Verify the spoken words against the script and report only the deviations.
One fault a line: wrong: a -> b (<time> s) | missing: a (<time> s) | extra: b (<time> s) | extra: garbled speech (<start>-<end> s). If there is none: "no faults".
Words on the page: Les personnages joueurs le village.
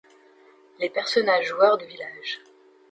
no faults